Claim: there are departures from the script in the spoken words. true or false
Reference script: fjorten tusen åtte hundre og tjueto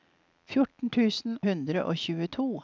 true